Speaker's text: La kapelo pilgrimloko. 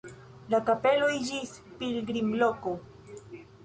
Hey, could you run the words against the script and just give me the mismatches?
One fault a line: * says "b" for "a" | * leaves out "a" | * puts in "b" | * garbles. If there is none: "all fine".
* puts in "iĝis"